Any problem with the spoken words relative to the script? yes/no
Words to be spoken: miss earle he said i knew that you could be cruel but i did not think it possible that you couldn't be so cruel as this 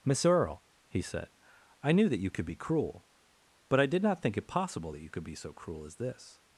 yes